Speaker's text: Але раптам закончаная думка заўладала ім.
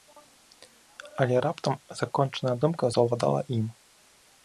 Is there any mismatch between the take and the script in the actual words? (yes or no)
no